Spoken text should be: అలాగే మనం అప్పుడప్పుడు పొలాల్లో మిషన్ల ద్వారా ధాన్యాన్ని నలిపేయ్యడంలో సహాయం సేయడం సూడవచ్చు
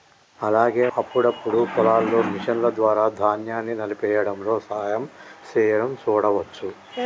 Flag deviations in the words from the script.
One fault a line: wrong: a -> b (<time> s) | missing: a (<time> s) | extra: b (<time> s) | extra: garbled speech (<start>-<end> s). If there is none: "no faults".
missing: మనం (0.8 s)